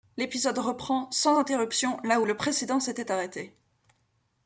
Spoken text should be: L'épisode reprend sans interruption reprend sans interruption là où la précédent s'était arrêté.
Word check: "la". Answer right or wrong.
wrong